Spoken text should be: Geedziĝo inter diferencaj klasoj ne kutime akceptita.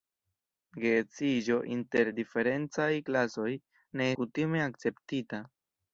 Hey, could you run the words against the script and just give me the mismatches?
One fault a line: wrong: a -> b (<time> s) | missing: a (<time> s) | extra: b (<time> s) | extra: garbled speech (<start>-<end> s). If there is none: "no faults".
no faults